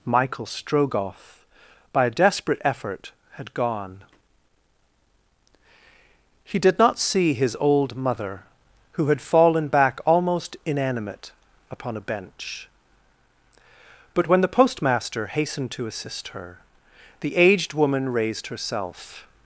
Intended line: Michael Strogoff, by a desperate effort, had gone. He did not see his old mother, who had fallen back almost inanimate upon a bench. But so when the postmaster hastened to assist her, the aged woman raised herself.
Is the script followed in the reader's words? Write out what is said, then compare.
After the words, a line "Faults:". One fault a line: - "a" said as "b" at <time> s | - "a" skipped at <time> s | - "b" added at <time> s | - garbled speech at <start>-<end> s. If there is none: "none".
Michael Strogoff, by a desperate effort, had gone. He did not see his old mother, who had fallen back almost inanimate upon a bench. But when the postmaster hastened to assist her, the aged woman raised herself.
Faults:
- "so" skipped at 14.3 s